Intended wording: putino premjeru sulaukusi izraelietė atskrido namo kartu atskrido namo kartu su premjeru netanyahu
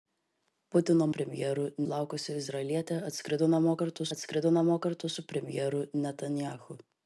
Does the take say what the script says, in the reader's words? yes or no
yes